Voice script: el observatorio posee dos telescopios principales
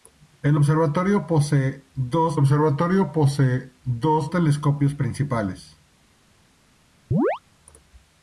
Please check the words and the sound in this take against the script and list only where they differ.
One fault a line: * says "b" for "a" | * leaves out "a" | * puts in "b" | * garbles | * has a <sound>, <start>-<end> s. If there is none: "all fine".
* puts in "observatorio posee dos"
* has a chirp, 7.1-7.4 s